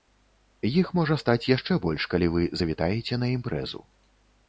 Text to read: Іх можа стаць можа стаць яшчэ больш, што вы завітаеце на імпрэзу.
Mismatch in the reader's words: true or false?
true